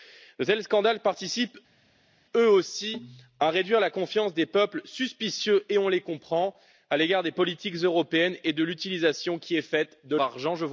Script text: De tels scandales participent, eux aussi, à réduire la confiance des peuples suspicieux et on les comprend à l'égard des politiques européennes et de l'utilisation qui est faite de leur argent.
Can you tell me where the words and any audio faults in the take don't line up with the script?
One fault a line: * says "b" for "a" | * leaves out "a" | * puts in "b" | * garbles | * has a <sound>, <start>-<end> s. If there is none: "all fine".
* leaves out "leur"